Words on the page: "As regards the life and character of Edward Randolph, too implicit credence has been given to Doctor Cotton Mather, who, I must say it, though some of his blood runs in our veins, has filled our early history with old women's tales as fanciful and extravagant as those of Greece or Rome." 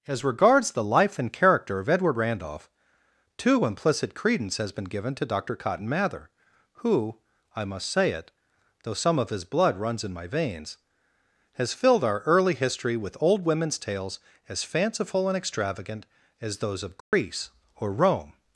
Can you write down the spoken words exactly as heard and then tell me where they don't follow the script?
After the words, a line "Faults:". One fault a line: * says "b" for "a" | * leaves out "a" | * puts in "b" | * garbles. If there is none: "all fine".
"As regards the life and character of Edward Randolph, too implicit credence has been given to Doctor Cotton Mather, who, I must say it, though some of his blood runs in my veins, has filled our early history with old women's tales as fanciful and extravagant as those of Greece or Rome."
Faults:
* says "my" for "our"